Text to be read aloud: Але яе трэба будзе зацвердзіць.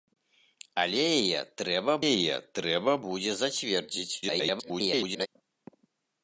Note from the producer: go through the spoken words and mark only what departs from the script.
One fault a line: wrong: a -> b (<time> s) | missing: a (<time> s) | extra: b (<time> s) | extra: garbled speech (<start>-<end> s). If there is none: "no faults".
extra: яе трэба (2.1 s)
extra: garbled speech (4.2-5.3 s)